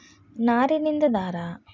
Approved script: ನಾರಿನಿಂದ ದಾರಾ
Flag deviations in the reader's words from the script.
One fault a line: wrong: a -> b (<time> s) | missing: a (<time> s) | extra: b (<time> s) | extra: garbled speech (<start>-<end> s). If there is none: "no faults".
no faults